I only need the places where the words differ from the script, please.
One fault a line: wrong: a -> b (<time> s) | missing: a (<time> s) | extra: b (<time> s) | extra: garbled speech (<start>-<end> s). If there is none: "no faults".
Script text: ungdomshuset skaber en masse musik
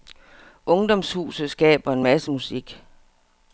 no faults